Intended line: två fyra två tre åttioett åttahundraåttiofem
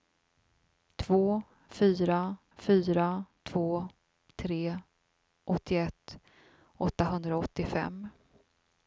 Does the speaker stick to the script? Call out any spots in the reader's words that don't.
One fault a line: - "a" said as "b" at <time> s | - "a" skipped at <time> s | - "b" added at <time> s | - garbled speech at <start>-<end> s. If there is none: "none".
- "fyra" added at 2.6 s